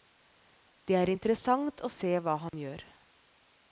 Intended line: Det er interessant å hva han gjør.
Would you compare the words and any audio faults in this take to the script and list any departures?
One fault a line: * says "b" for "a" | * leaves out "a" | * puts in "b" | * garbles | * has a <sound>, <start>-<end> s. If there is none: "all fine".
* puts in "se"
* has a dropout, 2.5-2.5 s